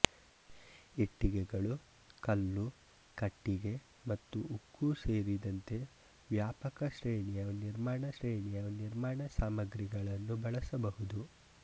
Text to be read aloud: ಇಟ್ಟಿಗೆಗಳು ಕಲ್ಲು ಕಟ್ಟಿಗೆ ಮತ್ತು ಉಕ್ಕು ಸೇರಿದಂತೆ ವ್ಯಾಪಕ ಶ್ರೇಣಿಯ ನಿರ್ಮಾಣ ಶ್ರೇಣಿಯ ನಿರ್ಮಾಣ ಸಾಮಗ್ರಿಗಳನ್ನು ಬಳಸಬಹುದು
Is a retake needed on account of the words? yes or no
no